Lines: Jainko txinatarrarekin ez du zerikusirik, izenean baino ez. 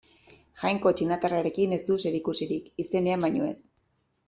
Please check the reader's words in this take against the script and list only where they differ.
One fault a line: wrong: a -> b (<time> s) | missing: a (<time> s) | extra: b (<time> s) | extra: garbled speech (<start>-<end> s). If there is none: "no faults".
no faults